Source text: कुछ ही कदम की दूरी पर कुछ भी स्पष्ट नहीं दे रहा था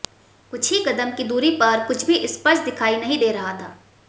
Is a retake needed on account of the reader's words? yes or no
yes